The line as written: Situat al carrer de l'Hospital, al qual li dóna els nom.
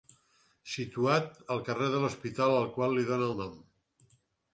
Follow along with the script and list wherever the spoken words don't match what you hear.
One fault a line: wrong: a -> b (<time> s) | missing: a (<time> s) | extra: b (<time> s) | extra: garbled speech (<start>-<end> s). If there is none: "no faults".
wrong: els -> el (3.3 s)